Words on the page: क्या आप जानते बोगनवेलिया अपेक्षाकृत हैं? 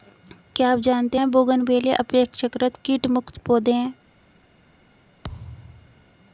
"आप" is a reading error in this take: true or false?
false